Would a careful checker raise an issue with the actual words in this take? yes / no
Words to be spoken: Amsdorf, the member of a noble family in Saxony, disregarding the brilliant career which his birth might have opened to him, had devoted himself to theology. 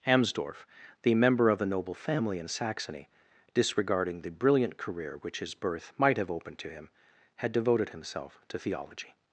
no